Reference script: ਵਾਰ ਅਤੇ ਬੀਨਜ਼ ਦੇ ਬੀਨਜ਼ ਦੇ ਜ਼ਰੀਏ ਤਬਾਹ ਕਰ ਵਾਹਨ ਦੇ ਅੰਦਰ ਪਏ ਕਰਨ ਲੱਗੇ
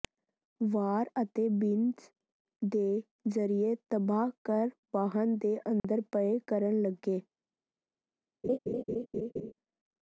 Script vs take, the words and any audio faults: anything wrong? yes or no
yes